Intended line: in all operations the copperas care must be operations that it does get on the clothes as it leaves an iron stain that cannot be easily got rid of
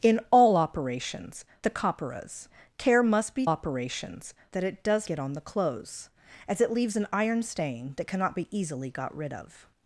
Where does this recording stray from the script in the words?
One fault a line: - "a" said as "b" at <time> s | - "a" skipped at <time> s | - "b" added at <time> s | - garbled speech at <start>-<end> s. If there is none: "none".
none